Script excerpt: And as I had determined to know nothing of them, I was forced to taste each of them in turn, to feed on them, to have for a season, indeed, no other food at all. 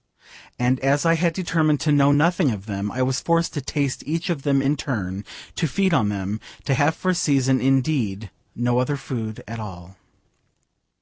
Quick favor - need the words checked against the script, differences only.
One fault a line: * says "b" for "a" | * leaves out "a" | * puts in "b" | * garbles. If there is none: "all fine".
all fine